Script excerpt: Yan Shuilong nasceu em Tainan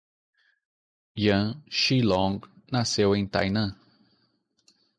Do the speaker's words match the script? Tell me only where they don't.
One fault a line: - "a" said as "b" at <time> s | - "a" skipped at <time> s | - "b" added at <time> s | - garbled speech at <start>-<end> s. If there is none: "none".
none